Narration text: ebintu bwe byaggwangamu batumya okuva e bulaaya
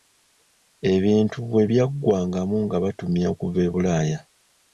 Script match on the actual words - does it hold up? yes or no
no